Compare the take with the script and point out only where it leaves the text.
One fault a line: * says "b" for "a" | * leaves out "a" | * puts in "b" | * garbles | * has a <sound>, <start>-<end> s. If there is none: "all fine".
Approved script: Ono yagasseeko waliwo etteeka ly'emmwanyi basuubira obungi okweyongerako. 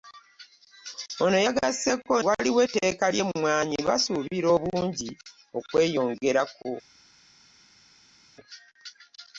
all fine